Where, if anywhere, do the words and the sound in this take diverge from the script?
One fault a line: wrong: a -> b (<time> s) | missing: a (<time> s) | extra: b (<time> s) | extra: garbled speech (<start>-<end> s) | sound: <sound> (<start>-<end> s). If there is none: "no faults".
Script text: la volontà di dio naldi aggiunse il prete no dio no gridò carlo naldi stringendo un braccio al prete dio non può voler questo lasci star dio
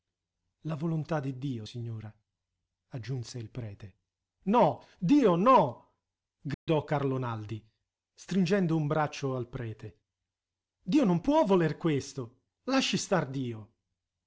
wrong: naldi -> signora (1.6 s)
sound: dropout (6.5-6.7 s)